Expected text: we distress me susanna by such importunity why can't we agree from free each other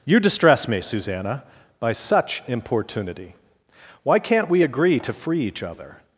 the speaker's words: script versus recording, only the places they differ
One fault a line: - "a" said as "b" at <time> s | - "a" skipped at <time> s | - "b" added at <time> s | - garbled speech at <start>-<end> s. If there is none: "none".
- "we" said as "you" at 0.1 s
- "from" said as "to" at 5.0 s